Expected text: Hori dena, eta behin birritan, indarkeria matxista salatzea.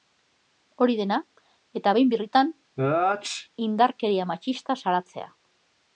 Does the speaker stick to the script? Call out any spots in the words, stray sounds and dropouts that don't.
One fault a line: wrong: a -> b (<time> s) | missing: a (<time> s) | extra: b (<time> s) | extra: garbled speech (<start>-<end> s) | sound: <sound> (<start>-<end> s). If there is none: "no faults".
sound: sneeze (2.8-3.5 s)